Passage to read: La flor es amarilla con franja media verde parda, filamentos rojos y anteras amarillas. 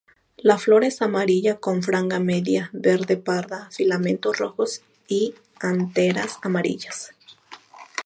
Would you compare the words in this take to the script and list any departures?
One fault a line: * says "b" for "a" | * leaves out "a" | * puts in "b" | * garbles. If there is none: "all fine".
all fine